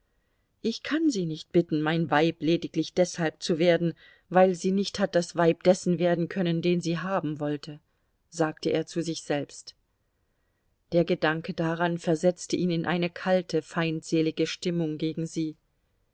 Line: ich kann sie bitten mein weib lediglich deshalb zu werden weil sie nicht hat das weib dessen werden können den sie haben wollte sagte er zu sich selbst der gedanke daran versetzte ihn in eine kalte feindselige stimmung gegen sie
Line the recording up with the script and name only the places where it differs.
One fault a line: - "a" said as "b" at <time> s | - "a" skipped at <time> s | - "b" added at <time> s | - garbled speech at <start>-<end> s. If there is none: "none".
- "nicht" added at 1.3 s